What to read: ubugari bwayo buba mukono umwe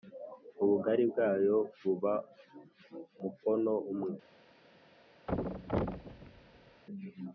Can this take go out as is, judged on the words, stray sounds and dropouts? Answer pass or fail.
fail